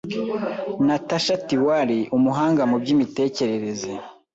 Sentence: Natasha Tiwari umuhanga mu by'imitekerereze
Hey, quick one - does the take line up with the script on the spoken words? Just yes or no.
yes